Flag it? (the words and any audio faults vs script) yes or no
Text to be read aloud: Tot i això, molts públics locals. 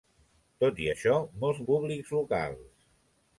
no